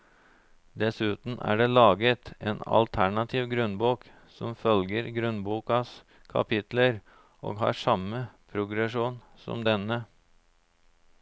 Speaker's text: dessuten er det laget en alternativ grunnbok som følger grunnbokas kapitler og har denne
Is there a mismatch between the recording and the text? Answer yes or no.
yes